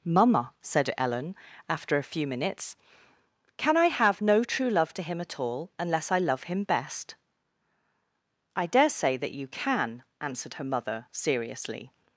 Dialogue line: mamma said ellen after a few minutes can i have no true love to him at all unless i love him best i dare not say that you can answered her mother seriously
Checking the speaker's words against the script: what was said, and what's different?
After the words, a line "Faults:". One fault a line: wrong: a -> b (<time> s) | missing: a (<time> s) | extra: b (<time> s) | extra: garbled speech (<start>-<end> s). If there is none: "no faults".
mamma said ellen after a few minutes can i have no true love to him at all unless i love him best i dare say that you can answered her mother seriously
Faults:
missing: not (8.9 s)